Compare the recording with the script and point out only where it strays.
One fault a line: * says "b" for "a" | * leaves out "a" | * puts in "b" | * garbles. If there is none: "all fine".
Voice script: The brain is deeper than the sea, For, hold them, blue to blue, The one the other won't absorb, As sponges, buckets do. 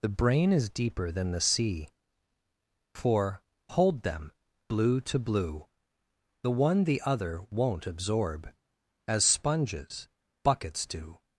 all fine